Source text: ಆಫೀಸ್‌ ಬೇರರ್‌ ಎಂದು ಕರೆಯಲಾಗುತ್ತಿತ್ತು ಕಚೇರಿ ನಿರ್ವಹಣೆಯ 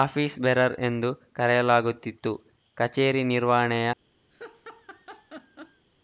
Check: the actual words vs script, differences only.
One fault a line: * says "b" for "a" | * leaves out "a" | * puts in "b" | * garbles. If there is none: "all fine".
all fine